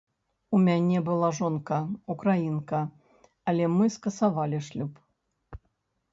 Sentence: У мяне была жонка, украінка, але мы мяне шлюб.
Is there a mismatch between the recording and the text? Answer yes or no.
yes